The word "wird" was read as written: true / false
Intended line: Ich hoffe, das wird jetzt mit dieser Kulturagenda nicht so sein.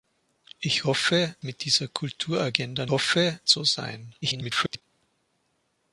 false